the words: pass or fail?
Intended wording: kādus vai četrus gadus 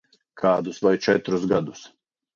pass